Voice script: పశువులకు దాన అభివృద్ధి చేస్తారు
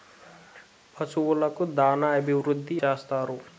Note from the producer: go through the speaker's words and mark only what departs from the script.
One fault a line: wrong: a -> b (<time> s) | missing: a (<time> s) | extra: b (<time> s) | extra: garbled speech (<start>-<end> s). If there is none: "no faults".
no faults